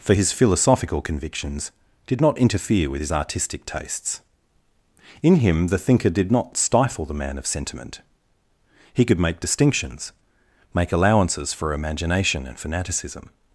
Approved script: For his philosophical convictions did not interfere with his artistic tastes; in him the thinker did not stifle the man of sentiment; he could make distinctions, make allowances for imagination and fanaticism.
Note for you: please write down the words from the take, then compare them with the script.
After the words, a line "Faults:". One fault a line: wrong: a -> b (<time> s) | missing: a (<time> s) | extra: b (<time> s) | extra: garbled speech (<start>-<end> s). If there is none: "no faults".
For his philosophical convictions did not interfere with his artistic tastes; in him the thinker did not stifle the man of sentiment; he could make distinctions, make allowances for imagination and fanaticism.
Faults:
no faults